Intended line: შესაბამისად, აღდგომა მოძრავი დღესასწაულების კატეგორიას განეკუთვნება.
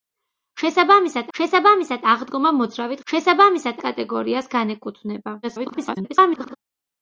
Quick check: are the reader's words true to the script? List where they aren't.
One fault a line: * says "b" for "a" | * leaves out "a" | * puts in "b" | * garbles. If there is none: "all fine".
* puts in "შესაბამისად"
* says "შესაბამისად" for "დღესასწაულების"
* garbles